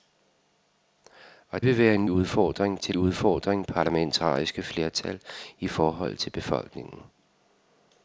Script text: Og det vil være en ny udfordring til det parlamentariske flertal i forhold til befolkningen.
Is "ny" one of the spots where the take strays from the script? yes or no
yes